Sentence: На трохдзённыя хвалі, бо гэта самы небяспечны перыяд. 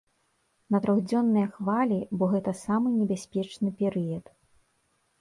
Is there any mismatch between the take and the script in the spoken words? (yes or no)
no